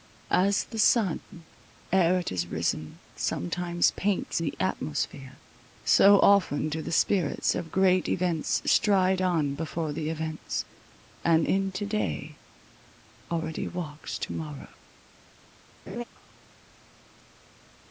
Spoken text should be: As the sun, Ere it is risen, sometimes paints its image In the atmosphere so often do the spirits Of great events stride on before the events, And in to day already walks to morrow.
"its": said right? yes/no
no